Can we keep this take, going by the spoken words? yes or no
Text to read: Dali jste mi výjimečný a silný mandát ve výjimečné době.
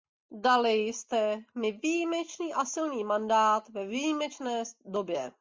yes